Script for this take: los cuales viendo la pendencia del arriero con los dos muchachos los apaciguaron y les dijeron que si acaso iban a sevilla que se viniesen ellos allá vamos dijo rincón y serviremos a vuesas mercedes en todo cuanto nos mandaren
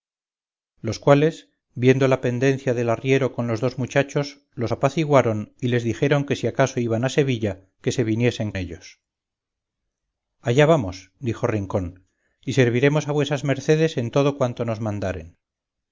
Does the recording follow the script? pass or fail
pass